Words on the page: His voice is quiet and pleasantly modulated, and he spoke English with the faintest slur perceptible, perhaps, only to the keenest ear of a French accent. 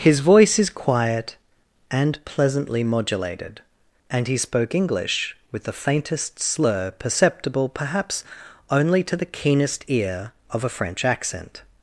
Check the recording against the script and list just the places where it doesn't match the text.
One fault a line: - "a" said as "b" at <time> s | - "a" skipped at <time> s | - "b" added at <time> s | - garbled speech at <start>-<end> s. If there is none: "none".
none